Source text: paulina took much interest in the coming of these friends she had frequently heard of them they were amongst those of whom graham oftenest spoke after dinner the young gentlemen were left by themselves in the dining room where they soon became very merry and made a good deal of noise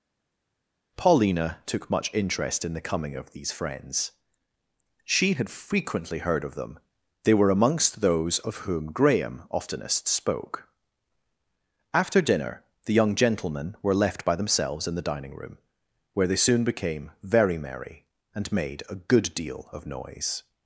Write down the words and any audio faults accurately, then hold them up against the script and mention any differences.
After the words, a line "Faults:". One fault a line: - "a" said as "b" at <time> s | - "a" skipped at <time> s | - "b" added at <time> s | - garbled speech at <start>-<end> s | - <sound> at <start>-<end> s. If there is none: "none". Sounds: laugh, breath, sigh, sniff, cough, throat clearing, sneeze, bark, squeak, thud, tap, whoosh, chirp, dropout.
paulina took much interest in the coming of these friends she had frequently heard of them they were amongst those of whom graham oftenest spoke after dinner the young gentlemen were left by themselves in the dining room where they soon became very merry and made a good deal of noise
Faults:
none